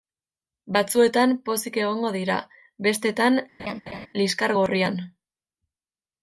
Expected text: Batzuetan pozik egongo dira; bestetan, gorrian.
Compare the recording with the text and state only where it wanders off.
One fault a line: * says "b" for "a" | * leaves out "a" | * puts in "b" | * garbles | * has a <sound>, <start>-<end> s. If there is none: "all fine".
* has a laugh, 3.6-4.1 s
* puts in "liskar"